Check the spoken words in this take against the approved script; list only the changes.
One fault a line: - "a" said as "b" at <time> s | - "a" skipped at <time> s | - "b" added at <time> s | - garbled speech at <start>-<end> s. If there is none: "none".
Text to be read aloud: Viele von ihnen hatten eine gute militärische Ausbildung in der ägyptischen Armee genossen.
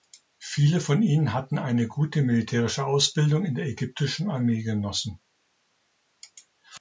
none